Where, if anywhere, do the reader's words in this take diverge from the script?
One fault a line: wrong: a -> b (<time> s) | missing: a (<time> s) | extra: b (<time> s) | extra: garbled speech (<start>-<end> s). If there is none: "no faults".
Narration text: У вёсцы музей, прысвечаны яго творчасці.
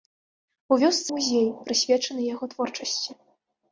no faults